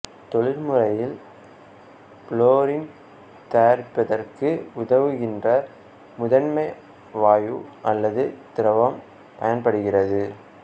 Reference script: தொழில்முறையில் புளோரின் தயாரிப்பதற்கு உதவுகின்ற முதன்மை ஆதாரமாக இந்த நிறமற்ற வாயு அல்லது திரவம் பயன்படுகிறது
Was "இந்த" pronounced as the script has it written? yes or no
no